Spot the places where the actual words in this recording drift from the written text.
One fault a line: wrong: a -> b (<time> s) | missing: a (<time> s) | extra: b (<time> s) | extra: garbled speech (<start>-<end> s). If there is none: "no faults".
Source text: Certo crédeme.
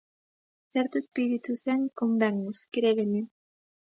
extra: espírito zen convennos (1.0 s)